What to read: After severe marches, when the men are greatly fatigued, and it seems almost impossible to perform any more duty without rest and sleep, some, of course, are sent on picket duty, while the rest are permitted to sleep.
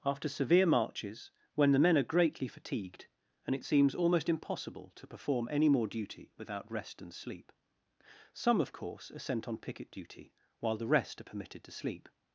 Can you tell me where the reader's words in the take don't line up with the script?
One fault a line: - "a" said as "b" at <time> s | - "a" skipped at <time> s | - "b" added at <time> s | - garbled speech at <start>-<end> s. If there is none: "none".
none